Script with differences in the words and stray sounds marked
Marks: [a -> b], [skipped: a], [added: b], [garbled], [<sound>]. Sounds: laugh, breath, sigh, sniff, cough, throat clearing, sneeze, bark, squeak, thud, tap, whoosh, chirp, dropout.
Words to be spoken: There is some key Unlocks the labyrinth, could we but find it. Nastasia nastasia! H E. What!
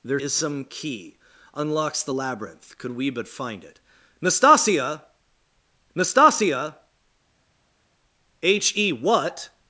There is some key Unlocks the labyrinth, could we but find it. Nastasia nastasia! H E. What!